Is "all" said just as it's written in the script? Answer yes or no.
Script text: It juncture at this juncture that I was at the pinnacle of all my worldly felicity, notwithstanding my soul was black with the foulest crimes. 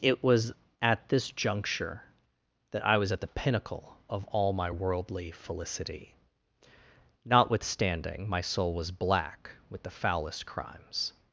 yes